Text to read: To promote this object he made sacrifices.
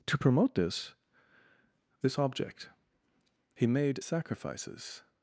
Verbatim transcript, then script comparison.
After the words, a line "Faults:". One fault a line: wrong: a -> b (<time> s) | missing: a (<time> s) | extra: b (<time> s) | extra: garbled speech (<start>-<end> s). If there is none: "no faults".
To promote this this object he made sacrifices.
Faults:
extra: this (2.0 s)